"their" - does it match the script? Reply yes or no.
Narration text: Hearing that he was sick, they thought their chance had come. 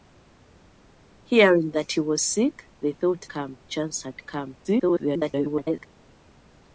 no